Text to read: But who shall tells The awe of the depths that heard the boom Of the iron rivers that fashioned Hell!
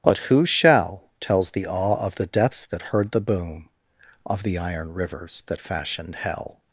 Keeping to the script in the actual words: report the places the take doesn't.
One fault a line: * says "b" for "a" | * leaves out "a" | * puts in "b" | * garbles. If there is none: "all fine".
all fine